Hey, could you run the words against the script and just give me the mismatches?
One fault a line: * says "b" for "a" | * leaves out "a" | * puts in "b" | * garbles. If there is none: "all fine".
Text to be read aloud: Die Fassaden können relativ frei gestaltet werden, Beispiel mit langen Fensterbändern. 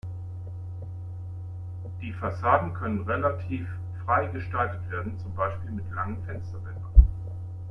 * puts in "zum"